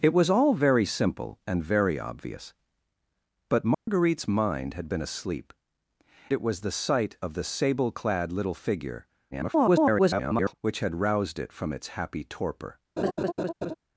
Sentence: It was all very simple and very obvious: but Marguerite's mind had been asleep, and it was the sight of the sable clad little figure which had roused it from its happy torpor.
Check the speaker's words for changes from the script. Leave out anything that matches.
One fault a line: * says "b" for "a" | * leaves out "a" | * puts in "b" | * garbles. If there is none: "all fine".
* leaves out "and"
* garbles